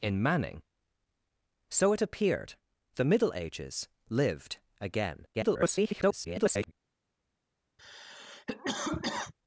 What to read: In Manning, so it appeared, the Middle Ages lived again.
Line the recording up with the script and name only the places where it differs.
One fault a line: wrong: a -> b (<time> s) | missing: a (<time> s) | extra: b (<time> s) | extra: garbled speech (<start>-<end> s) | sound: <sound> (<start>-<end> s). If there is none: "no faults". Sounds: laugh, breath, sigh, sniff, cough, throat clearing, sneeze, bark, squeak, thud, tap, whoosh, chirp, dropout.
extra: garbled speech (5.3-6.7 s)
sound: cough (7.8-9.3 s)